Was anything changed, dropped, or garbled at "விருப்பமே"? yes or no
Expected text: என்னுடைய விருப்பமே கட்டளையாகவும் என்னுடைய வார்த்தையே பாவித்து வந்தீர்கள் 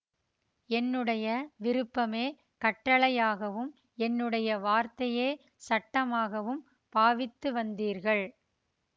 no